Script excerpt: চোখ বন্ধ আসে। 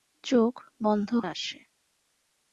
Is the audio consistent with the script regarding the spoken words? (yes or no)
yes